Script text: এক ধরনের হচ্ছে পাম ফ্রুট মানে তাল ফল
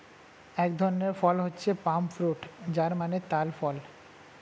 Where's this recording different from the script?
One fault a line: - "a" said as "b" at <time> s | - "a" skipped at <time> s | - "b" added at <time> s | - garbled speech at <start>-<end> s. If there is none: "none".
- "ফল" added at 1.1 s
- "যার" added at 2.7 s